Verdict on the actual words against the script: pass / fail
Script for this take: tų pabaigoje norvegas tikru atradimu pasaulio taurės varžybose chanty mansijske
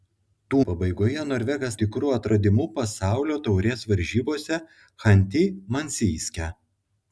pass